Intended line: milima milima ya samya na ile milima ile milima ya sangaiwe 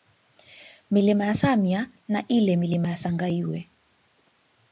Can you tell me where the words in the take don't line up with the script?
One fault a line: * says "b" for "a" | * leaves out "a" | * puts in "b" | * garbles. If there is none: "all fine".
* leaves out "milima"
* leaves out "ile milima"